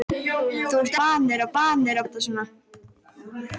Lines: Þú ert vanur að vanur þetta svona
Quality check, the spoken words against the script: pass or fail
pass